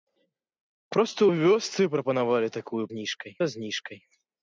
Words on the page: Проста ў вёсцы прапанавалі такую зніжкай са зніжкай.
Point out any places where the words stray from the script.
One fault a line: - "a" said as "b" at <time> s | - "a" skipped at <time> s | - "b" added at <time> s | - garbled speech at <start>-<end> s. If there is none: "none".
none